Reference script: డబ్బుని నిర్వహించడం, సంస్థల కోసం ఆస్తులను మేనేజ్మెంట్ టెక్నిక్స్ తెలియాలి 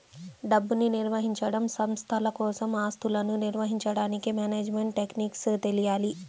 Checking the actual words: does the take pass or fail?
fail